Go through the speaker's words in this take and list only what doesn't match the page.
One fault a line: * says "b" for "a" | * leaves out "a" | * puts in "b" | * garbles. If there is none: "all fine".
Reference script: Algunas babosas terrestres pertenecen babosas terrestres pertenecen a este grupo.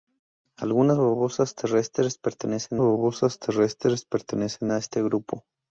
all fine